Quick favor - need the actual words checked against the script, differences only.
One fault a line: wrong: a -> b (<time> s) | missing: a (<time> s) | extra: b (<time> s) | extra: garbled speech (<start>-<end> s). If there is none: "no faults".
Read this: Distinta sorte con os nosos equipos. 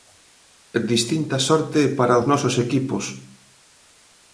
wrong: con -> para (2.0 s)